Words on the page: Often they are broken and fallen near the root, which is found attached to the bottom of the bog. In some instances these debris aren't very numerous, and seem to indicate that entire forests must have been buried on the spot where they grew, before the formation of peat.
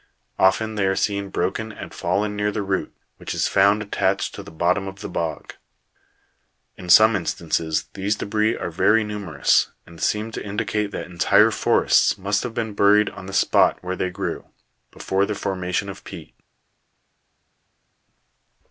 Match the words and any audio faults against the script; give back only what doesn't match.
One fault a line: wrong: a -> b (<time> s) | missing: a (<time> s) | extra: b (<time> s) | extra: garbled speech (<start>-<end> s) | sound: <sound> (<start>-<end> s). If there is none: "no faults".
extra: seen (0.9 s)
wrong: aren't -> are (8.6 s)